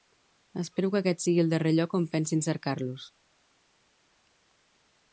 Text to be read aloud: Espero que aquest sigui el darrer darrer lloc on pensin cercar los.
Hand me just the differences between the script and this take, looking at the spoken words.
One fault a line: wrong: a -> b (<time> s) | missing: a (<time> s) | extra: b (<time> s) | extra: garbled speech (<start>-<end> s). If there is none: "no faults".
missing: darrer (1.7 s)